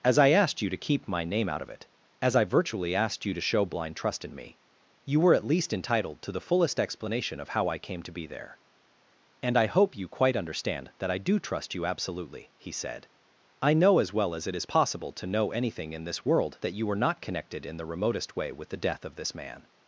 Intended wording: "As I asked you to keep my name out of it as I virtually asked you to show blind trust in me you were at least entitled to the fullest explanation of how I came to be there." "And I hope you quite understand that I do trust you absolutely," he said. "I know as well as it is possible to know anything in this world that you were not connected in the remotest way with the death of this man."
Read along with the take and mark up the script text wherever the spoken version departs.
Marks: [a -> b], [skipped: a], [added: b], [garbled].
"As I asked you to keep my name out of it as I virtually asked you to show blind trust in me you were at least entitled to the fullest explanation of how I came to be there." "And I hope you quite understand that I do trust you absolutely," he said. "I know as well as it is possible to know anything in this world that you were not connected in the remotest way with the death of this man."